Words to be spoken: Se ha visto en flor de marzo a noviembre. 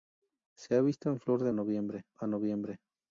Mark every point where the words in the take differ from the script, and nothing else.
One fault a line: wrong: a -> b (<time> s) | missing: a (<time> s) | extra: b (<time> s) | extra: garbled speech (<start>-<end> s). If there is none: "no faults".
wrong: marzo -> noviembre (1.5 s)